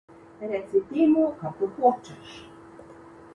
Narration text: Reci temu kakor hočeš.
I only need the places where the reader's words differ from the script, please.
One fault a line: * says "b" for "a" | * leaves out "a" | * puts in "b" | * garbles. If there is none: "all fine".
all fine